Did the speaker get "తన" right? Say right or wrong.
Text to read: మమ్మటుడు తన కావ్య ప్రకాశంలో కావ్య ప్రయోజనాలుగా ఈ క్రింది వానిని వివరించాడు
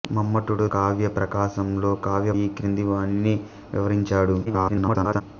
wrong